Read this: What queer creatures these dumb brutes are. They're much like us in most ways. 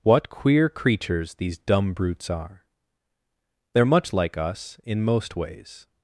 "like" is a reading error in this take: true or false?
false